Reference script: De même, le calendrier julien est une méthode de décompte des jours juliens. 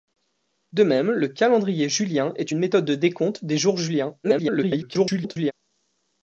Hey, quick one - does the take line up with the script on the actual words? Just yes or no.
no